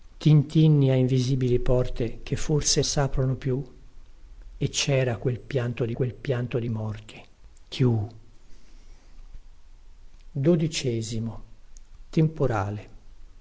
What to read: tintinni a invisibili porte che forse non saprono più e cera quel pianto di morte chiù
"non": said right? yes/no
no